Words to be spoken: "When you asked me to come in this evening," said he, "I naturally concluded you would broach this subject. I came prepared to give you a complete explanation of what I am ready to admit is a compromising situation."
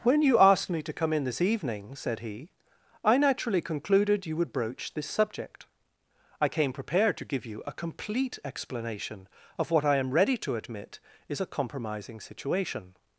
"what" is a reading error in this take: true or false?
false